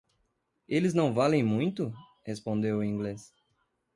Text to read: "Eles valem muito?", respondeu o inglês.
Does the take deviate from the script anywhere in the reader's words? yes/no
yes